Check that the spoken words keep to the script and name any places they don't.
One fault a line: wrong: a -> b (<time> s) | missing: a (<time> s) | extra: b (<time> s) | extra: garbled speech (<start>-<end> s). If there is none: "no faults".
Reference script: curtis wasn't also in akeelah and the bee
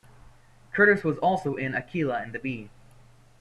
wrong: wasn't -> was (1.0 s)